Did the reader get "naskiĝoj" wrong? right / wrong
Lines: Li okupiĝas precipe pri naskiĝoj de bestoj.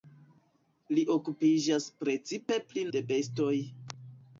wrong